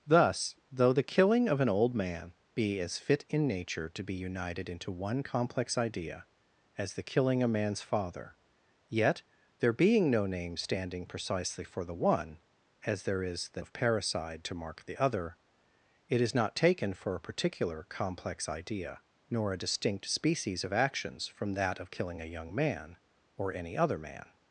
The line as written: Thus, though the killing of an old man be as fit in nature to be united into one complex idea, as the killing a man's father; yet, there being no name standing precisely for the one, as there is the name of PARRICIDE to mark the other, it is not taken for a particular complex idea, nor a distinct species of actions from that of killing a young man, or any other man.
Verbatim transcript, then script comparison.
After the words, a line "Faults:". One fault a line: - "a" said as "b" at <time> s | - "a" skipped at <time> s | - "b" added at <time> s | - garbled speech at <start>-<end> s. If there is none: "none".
Thus, though the killing of an old man be as fit in nature to be united into one complex idea, as the killing a man's father; yet, there being no name standing precisely for the one, as there is the of PARRICIDE to mark the other, it is not taken for a particular complex idea, nor a distinct species of actions from that of killing a young man, or any other man.
Faults:
- "name" skipped at 13.6 s